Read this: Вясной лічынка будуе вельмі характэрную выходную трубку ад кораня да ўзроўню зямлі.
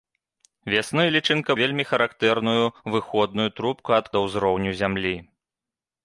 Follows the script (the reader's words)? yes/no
no